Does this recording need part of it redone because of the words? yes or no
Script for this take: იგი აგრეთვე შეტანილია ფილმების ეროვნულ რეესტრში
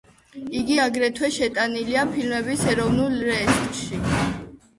no